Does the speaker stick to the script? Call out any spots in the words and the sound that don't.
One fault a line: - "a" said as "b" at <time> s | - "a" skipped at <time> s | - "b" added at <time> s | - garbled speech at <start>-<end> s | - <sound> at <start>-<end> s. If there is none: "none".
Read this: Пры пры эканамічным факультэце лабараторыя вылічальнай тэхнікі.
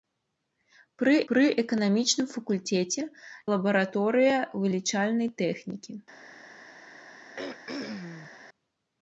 - throat clearing at 7.4-8.3 s